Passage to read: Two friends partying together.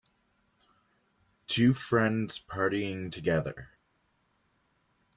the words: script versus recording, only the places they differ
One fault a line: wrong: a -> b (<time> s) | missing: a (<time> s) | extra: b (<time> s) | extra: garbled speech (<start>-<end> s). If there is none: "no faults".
no faults